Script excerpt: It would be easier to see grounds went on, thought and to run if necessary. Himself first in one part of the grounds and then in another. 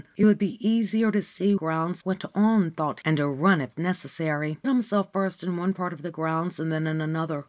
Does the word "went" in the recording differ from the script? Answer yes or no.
no